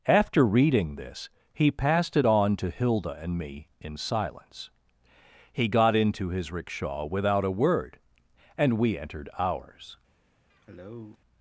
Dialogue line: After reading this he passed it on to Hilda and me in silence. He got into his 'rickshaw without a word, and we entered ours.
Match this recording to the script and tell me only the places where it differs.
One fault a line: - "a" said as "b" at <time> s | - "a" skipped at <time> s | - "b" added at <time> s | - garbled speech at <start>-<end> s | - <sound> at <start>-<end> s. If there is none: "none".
- cough at 10.5-11.2 s